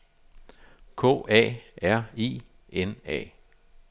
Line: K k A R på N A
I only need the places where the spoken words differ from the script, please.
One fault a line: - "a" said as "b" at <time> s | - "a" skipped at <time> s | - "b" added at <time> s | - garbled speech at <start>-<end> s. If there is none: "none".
- "k" skipped at 1.2 s
- "på" said as "I" at 2.2 s